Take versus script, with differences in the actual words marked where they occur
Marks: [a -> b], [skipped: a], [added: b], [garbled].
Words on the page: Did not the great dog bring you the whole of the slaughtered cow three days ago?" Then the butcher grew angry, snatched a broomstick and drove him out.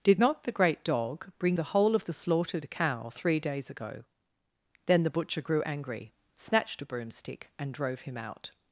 Did not the great dog bring [skipped: you] the whole of the slaughtered cow three days ago?" Then the butcher grew angry, snatched a broomstick and drove him out.